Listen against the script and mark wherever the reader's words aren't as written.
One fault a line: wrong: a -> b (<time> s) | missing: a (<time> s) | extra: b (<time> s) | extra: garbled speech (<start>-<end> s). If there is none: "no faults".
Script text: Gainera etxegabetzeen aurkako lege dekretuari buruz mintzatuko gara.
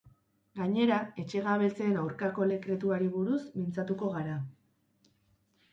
missing: lege (2.5 s)